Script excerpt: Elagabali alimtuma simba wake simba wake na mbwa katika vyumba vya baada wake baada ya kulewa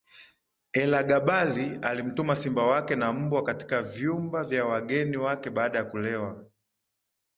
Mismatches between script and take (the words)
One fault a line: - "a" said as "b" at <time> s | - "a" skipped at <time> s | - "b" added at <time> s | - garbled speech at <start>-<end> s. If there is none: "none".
- "simba wake" skipped at 3.0 s
- "baada" said as "wageni" at 4.7 s